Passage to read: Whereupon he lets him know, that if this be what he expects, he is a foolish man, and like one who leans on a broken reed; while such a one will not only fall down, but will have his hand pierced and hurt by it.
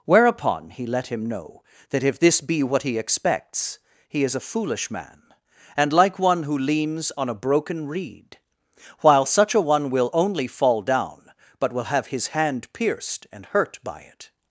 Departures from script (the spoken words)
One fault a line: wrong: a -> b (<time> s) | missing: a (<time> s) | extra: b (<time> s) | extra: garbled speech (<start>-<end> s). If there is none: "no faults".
wrong: lets -> let (0.8 s)
missing: not (10.1 s)